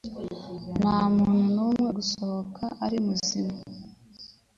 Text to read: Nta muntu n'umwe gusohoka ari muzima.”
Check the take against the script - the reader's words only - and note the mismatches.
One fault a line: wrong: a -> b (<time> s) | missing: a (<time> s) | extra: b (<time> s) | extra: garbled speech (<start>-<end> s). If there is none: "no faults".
no faults